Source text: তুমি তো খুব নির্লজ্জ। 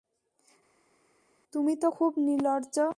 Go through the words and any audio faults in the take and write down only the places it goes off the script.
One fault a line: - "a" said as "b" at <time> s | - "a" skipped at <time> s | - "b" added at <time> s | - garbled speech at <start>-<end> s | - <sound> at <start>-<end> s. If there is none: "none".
none